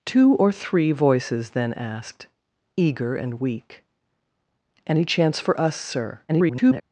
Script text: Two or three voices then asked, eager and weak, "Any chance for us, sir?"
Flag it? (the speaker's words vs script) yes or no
yes